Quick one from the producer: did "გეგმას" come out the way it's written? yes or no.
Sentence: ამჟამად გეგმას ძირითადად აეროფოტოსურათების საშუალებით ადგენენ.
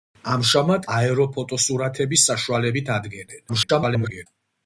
no